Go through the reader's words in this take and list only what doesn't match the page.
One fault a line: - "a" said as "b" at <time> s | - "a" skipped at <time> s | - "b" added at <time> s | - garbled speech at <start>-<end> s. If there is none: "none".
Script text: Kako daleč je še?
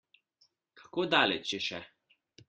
none